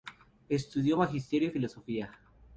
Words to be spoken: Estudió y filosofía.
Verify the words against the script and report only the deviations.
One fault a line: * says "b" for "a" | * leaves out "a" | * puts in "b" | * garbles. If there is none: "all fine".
* puts in "magisterio"